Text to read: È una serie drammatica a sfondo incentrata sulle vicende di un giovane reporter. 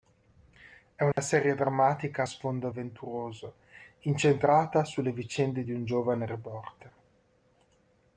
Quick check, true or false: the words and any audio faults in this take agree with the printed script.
false